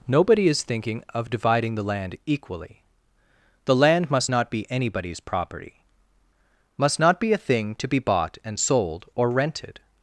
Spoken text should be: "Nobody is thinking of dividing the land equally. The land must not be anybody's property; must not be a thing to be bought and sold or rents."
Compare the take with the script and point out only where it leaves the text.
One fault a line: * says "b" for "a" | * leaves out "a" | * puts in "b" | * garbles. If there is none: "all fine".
* says "rented" for "rents"